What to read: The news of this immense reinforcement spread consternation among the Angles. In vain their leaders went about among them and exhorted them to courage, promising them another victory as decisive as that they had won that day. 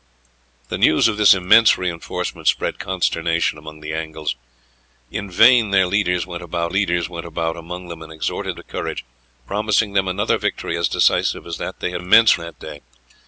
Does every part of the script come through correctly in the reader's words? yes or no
no